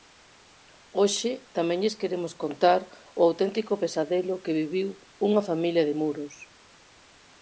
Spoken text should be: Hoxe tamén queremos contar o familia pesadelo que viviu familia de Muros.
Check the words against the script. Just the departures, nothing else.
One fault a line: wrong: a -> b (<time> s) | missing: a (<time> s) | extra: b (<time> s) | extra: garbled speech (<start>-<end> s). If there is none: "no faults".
extra: lles (1.8 s)
wrong: familia -> auténtico (3.3 s)
extra: unha (5.3 s)